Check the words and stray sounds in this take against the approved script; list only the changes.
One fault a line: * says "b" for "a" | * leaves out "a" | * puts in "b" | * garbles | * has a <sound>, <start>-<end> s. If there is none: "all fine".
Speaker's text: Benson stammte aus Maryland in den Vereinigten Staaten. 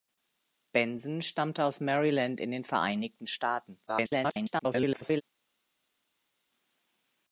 * garbles